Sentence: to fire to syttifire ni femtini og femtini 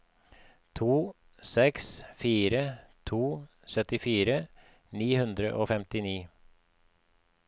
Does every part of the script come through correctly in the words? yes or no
no